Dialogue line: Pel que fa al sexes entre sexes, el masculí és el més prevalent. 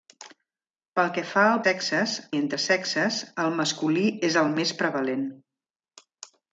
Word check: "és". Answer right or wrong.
right